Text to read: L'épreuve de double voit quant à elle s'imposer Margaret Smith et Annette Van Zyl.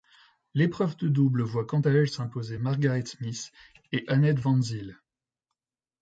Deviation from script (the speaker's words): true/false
false